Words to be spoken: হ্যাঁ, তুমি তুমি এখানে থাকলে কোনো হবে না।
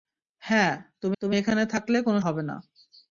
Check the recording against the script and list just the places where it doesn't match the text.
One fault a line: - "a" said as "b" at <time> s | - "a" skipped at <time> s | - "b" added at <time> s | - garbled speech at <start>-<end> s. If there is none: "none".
none